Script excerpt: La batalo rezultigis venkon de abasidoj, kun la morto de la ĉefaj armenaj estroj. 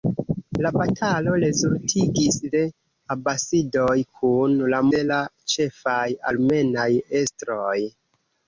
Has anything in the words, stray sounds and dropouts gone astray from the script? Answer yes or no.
yes